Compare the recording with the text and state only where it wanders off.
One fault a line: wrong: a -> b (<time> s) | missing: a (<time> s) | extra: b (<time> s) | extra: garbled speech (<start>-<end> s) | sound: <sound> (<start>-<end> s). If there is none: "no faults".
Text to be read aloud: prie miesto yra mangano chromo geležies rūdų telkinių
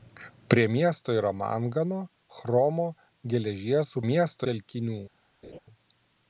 wrong: rūdų -> miesto (4.1 s)
sound: laugh (5.4-5.6 s)